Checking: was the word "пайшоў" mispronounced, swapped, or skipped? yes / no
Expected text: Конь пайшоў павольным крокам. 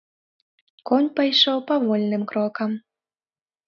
no